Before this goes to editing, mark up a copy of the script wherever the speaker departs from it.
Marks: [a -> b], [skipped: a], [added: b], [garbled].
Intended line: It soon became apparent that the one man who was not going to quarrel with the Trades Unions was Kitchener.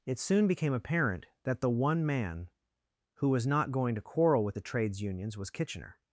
It soon became apparent that the one man who was not going to quarrel with the Trades Unions was Kitchener.